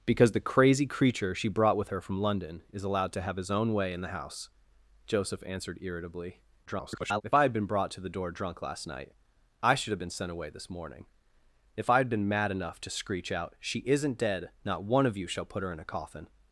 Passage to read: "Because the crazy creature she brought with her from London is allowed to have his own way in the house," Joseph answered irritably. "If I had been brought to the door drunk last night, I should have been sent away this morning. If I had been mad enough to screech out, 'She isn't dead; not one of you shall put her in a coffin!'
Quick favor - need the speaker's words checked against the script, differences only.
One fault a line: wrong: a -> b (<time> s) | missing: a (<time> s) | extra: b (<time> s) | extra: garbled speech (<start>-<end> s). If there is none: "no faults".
extra: garbled speech (6.7-7.2 s)